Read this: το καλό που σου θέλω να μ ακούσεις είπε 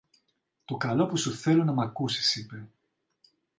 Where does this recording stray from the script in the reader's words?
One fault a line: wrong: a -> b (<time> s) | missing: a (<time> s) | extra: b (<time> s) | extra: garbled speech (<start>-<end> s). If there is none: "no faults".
no faults